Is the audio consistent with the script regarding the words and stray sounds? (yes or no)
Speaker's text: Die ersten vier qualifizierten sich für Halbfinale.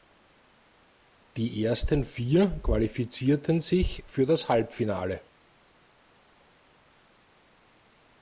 no